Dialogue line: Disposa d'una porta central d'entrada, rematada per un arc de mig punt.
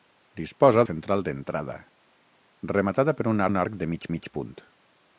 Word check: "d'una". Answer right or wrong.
wrong